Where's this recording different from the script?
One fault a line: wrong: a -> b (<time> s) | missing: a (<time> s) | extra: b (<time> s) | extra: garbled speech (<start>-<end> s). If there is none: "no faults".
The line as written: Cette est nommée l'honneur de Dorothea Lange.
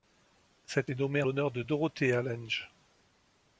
no faults